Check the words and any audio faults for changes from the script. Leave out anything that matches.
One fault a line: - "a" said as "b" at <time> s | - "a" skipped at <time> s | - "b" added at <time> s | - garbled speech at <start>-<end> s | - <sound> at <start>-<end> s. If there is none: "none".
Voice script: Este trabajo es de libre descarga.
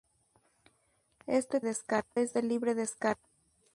- "trabajo" said as "descarga" at 1.6 s